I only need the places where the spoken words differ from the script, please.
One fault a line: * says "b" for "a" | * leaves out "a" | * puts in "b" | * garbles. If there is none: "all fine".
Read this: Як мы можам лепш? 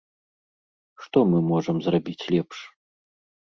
* says "Што" for "Як"
* puts in "зрабіць"